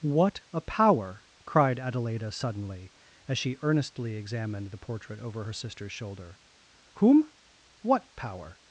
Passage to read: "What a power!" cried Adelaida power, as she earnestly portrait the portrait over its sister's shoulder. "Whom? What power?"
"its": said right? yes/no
no